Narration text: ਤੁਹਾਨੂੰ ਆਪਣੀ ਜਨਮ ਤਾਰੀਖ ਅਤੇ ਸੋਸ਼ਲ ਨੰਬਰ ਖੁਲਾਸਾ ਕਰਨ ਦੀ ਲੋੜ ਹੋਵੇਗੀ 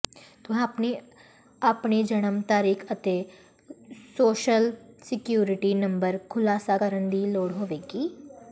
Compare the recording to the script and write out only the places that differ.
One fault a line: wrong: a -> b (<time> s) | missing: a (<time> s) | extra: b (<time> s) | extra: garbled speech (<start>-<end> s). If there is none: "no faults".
extra: ਸਿਕਿਉਰਿਟੀ (5.0 s)